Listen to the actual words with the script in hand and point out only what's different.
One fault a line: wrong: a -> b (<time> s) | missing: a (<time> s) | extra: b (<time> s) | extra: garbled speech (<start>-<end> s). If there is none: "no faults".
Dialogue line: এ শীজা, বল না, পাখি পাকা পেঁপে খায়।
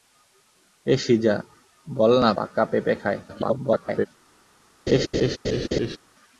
missing: পাখি (2.3 s)
extra: garbled speech (3.3-4.1 s)